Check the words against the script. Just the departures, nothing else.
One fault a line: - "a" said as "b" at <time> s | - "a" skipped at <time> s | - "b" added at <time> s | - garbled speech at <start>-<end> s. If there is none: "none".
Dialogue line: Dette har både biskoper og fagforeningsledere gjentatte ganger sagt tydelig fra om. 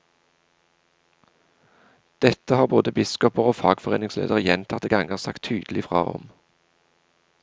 none